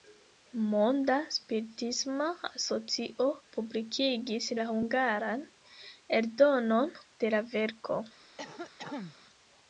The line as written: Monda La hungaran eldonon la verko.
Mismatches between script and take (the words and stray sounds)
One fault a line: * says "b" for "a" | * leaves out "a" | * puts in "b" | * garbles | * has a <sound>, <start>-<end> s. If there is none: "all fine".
* puts in "Spiritisma Asocio publikigis"
* puts in "de"
* has a cough, 8.4-9.2 s